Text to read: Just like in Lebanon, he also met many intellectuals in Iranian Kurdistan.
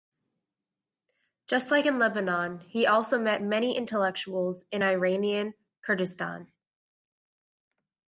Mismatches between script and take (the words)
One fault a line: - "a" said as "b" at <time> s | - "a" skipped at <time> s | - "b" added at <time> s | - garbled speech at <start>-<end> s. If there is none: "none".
none